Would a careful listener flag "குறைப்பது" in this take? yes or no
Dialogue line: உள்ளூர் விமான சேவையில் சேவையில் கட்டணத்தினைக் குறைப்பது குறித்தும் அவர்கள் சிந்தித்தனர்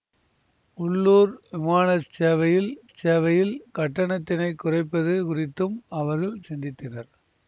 no